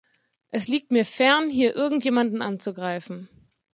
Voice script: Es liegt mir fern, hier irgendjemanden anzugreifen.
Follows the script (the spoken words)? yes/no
yes